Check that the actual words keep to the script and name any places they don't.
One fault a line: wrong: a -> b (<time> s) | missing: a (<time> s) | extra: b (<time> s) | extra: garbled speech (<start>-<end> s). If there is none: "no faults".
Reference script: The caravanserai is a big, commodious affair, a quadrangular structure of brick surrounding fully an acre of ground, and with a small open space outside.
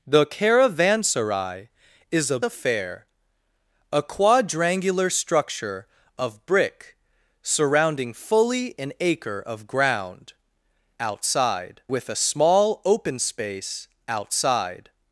missing: big commodious (2.4 s)
wrong: and -> outside (11.0 s)